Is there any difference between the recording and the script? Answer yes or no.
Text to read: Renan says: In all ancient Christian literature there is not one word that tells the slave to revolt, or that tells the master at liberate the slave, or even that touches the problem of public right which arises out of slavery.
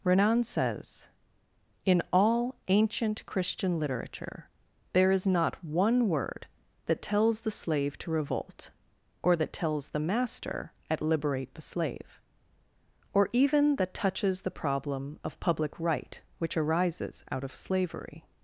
no